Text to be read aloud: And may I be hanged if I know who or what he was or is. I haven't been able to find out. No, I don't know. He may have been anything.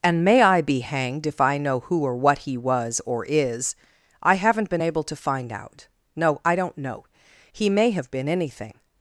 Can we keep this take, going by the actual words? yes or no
yes